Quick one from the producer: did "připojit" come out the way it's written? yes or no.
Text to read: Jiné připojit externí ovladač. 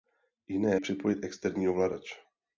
yes